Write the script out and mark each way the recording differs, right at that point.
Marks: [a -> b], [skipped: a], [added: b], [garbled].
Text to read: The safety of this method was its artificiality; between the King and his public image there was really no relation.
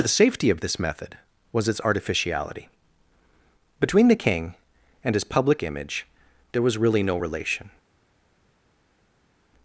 The safety of this method was its artificiality; between the King and his public image there was really no relation.